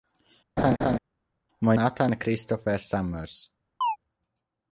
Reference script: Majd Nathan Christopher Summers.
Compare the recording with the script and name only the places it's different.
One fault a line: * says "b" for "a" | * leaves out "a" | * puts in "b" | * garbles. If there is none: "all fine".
all fine